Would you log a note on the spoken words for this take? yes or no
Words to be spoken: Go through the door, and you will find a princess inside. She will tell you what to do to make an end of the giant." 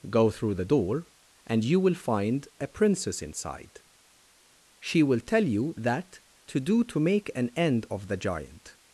yes